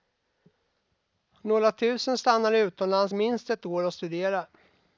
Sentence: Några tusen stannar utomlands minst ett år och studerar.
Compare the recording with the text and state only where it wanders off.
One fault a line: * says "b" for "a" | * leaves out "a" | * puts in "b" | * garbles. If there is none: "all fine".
all fine